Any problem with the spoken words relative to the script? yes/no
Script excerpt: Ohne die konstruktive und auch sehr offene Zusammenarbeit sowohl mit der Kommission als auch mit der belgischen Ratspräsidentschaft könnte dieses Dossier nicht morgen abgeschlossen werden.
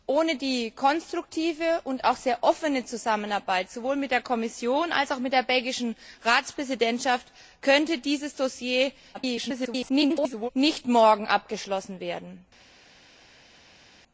yes